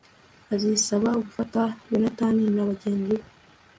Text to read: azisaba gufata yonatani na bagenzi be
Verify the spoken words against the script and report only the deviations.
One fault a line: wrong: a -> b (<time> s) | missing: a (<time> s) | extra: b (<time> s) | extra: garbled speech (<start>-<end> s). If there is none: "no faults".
no faults